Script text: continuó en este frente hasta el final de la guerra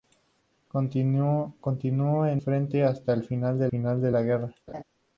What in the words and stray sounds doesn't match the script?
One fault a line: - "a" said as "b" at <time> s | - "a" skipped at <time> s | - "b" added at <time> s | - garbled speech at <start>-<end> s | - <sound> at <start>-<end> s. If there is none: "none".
- "este" skipped at 2.4 s
- "final de" added at 3.7 s
- laugh at 4.7-4.8 s